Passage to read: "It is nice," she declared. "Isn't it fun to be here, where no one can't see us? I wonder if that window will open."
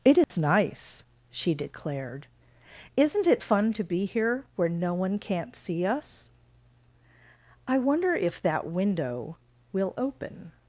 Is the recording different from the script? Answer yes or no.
no